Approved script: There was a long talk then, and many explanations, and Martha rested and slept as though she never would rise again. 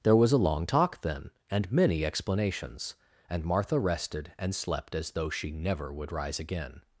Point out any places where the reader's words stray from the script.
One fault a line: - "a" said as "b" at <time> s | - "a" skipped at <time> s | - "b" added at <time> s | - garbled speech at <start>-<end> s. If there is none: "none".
none